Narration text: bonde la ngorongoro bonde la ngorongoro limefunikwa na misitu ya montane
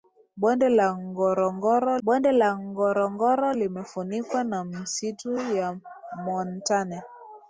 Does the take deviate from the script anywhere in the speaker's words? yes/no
no